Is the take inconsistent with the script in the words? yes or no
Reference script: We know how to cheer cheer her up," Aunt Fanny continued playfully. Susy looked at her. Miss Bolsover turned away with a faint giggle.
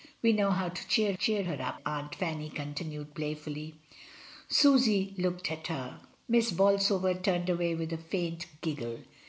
no